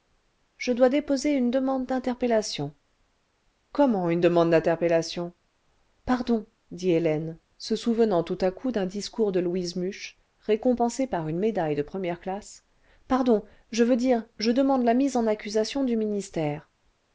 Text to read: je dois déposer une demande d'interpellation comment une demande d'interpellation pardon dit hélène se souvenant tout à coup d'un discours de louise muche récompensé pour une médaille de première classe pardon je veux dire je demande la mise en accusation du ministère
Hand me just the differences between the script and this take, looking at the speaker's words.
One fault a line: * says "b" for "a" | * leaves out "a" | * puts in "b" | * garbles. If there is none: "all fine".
* says "par" for "pour"